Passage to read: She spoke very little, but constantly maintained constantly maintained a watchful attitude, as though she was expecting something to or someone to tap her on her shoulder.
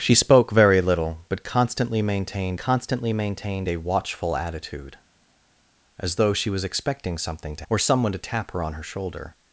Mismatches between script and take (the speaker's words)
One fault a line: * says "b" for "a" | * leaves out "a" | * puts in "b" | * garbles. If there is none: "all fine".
all fine